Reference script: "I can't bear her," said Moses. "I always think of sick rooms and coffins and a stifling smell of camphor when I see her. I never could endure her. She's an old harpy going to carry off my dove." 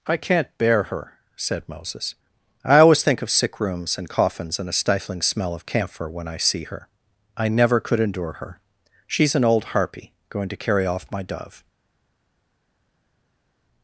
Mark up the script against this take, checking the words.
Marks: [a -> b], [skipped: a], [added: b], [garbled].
"I can't bear her," said Moses. "I always think of sick rooms and coffins and a stifling smell of camphor when I see her. I never could endure her. She's an old harpy going to carry off my dove."